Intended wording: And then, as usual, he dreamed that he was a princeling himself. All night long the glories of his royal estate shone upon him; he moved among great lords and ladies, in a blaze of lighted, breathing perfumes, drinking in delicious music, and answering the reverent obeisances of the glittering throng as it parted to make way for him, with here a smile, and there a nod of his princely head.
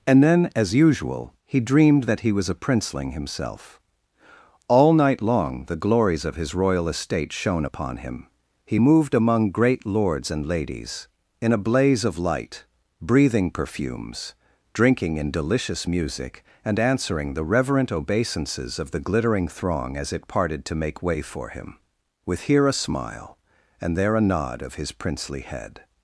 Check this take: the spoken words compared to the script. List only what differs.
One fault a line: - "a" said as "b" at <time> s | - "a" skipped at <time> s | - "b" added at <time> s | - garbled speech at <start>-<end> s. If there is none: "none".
- "lighted" said as "light" at 12.2 s